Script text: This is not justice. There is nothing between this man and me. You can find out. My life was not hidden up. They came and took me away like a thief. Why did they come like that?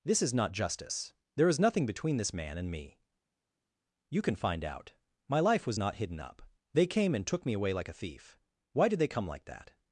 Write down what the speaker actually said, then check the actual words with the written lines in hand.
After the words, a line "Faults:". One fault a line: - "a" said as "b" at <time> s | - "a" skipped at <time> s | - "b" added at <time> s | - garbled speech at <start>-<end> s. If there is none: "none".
This is not justice. There is nothing between this man and me. You can find out. My life was not hidden up. They came and took me away like a thief. Why did they come like that?
Faults:
none